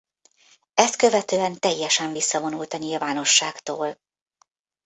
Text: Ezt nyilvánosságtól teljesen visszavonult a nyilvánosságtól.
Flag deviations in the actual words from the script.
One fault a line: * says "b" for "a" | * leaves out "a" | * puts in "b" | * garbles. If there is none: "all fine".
* says "követően" for "nyilvánosságtól"